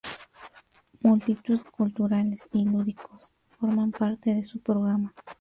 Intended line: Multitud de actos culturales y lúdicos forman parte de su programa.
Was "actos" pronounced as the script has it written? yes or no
no